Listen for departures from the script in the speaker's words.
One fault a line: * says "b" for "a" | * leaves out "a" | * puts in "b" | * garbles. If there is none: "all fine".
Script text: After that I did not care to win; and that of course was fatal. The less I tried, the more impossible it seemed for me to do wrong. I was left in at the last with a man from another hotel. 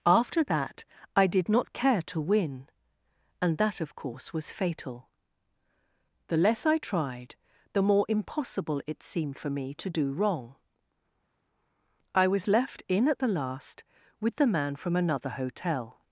* says "the" for "a"